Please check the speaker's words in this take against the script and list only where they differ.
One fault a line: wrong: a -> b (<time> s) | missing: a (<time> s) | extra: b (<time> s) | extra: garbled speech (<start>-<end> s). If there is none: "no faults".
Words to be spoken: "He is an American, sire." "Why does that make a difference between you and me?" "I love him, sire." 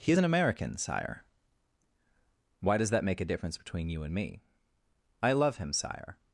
no faults